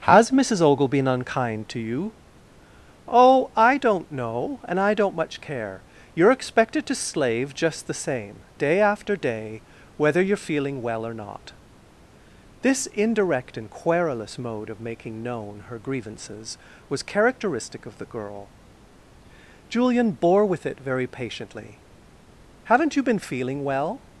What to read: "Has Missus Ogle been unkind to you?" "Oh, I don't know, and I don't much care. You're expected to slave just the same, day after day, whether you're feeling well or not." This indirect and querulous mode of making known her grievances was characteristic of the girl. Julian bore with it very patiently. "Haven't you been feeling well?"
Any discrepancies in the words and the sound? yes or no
no